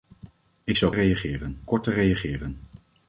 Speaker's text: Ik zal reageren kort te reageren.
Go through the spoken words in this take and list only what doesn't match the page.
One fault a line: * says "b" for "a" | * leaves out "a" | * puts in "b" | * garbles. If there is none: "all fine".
all fine